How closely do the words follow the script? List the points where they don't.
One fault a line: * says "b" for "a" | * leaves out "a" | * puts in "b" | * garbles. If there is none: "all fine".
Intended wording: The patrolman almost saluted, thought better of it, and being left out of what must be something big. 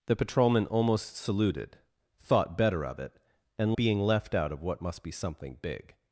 all fine